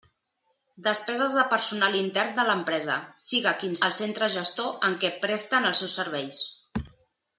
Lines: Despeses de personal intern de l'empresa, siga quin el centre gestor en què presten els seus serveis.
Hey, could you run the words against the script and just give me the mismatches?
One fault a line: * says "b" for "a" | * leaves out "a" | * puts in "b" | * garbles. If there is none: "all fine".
all fine